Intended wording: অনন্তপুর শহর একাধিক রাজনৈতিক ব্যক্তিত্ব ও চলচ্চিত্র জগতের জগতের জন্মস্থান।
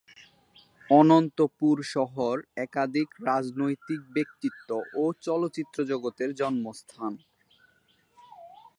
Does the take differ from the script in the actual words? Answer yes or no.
yes